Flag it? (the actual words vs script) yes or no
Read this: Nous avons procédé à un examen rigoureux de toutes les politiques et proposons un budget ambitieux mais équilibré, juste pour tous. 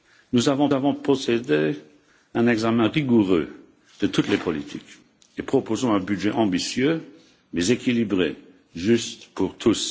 yes